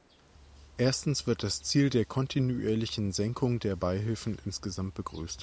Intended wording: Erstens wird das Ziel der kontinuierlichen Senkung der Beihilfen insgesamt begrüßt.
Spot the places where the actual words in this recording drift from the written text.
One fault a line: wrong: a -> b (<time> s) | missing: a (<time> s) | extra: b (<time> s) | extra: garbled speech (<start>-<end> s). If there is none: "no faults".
no faults